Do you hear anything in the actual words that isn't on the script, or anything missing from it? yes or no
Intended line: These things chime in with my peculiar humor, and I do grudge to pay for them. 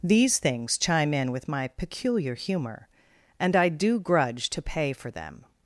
no